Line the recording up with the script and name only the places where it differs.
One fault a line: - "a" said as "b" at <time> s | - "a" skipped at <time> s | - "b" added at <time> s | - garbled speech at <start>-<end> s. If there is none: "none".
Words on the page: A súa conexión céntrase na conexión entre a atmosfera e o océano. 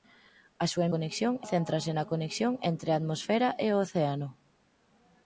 none